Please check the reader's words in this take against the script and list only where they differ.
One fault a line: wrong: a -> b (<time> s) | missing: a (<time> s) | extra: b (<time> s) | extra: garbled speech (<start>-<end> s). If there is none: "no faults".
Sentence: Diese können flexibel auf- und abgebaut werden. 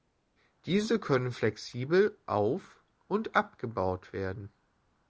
no faults